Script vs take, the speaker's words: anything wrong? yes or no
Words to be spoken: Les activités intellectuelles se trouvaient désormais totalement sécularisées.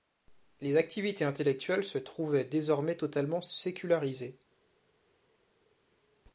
no